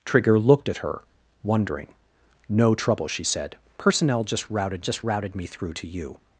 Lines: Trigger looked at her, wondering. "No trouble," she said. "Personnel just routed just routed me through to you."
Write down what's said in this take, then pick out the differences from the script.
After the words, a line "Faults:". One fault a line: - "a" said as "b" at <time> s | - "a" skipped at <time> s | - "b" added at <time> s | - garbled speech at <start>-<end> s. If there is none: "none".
Trigger looked at her, wondering. "No trouble," she said. "Personnel just routed just routed me through to you."
Faults:
none